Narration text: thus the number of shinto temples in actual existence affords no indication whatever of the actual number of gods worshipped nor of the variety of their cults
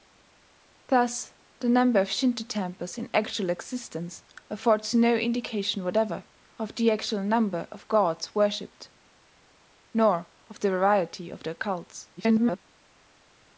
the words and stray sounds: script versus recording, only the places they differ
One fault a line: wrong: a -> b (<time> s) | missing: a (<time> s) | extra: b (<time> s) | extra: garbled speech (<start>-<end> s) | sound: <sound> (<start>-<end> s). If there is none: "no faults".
extra: garbled speech (12.2-12.6 s)